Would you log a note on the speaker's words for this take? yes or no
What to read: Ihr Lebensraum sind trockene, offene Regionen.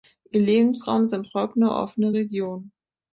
no